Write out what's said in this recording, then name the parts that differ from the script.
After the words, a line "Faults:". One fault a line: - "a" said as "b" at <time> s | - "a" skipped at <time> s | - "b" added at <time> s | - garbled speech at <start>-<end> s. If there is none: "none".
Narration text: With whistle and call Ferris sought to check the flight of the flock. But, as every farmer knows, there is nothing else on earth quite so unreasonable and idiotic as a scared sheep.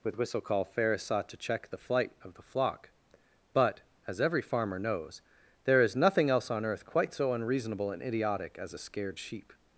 With whistle call Ferris sought to check the flight of the flock. But, as every farmer knows, there is nothing else on earth quite so unreasonable and idiotic as a scared sheep.
Faults:
- "and" skipped at 0.4 s